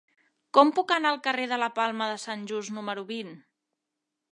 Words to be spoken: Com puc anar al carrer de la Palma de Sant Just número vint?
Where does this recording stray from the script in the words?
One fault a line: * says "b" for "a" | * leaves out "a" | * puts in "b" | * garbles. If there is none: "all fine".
all fine